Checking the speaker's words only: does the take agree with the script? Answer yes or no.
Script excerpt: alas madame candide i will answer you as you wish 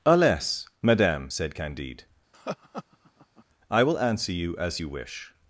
no